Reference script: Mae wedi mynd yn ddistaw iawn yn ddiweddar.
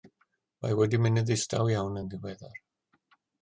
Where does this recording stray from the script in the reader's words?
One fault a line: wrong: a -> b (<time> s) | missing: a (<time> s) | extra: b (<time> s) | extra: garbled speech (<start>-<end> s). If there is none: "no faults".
no faults